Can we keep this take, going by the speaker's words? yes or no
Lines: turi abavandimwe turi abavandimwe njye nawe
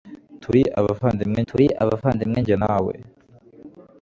yes